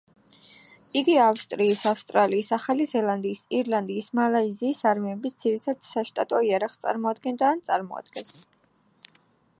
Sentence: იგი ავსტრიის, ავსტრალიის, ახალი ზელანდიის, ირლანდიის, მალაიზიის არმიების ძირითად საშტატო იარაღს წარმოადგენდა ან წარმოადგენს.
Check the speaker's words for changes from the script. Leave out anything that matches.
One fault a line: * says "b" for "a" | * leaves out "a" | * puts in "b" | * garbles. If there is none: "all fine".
all fine